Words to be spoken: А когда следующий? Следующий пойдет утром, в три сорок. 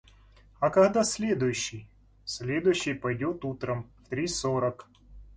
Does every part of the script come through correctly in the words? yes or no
yes